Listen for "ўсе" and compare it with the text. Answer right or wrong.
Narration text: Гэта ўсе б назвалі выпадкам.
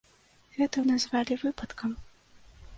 wrong